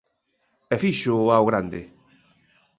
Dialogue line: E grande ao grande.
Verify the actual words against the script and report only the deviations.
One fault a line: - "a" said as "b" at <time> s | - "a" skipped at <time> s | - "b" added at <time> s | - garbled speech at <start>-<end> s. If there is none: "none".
- "grande" said as "fíxoo" at 0.8 s